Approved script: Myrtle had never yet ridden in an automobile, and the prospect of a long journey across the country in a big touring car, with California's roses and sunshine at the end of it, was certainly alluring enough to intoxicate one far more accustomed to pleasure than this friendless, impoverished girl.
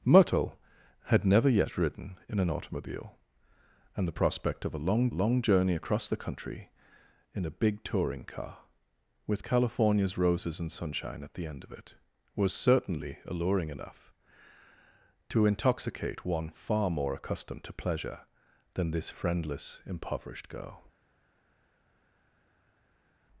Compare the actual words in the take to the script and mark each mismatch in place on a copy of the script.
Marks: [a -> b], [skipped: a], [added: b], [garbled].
Myrtle had never yet ridden in an automobile, and the prospect of a long [added: long] journey across the country in a big touring car, with California's roses and sunshine at the end of it, was certainly alluring enough to intoxicate one far more accustomed to pleasure than this friendless, impoverished girl.